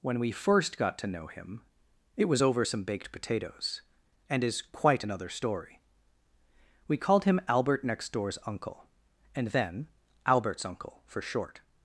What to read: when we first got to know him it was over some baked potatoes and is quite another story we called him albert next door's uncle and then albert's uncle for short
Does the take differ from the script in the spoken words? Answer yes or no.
no